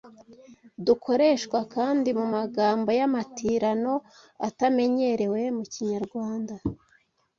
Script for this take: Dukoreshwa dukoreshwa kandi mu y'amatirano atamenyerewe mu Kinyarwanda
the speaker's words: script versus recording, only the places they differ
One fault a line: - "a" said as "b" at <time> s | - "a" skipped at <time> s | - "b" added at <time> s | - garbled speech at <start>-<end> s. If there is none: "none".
- "dukoreshwa" skipped at 1.6 s
- "magambo" added at 2.3 s